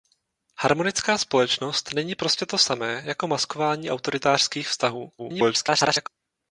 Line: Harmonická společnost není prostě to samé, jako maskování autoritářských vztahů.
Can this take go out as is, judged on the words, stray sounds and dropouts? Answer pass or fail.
fail